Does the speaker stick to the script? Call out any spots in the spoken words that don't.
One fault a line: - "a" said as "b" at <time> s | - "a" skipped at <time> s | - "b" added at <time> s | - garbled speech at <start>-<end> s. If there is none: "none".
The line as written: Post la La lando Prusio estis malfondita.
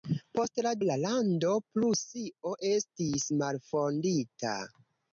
none